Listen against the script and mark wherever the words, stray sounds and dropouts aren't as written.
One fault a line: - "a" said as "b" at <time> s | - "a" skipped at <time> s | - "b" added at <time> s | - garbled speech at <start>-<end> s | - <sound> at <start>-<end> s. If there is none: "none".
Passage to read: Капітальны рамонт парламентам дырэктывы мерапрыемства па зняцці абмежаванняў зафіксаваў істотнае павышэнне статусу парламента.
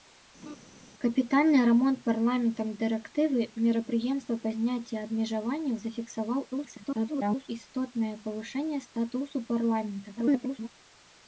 - laugh at 0.4-0.6 s
- garbled speech at 6.5-7.5 s
- garbled speech at 10.2-10.7 s